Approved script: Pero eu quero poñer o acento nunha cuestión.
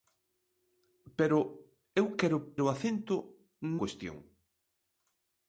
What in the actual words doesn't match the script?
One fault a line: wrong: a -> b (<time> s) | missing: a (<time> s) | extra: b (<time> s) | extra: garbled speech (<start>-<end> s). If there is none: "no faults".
missing: poñer (2.4 s)
missing: nunha (3.2 s)